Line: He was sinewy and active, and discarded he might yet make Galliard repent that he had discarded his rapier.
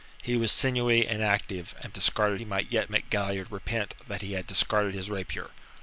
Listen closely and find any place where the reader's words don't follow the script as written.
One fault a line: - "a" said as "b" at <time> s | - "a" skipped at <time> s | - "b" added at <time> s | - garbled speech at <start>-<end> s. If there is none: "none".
none